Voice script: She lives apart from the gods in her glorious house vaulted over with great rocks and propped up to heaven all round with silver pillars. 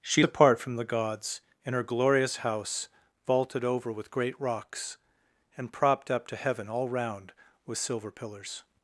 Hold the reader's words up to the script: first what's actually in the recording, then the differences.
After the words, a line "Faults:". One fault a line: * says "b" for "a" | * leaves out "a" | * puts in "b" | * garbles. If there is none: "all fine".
She apart from the gods in her glorious house vaulted over with great rocks and propped up to heaven all round with silver pillars.
Faults:
* leaves out "lives"